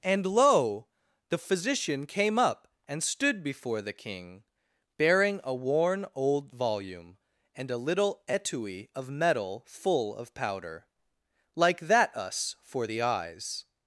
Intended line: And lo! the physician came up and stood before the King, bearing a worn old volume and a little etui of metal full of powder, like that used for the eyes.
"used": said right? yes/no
no